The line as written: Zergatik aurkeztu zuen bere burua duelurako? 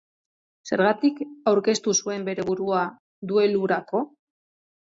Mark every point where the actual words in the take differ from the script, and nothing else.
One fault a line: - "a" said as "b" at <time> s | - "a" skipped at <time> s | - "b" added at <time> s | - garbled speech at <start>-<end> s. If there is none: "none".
none